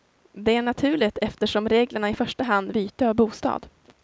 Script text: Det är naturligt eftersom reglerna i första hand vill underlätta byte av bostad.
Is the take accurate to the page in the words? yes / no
no